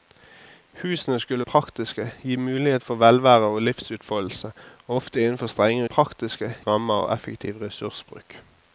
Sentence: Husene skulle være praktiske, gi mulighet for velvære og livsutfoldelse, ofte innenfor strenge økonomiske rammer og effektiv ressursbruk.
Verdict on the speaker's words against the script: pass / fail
fail